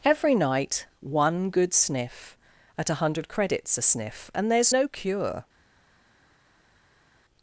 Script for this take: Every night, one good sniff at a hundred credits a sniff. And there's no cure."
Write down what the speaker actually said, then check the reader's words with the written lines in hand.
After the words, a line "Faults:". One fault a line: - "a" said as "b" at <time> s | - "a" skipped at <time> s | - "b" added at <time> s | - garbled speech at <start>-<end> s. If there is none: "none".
Every night, one good sniff at a hundred credits a sniff. And there's no cure."
Faults:
none